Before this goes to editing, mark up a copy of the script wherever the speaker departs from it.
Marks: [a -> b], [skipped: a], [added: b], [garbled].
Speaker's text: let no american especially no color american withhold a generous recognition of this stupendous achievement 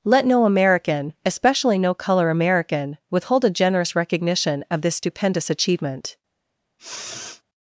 let no american especially no color american withhold a generous recognition of this stupendous achievement